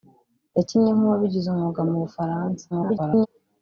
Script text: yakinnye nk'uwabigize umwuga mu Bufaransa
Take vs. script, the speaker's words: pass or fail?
fail